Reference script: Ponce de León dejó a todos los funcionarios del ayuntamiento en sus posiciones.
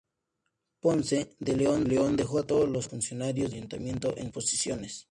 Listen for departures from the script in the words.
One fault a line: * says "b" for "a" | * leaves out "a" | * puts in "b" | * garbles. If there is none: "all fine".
* puts in "León"
* leaves out "del"
* leaves out "sus"